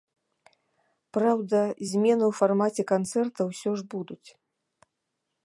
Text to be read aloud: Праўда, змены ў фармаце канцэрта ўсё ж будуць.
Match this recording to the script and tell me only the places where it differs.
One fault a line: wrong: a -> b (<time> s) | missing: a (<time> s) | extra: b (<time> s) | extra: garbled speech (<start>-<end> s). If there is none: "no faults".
no faults